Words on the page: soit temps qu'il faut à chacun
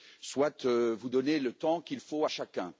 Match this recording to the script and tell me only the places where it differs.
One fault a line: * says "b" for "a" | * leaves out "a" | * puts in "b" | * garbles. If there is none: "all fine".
* puts in "vous donnez le"